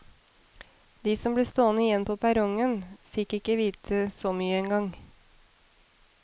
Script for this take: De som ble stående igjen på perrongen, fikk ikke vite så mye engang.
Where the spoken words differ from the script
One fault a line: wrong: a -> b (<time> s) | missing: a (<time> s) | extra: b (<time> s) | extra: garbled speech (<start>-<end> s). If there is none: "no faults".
no faults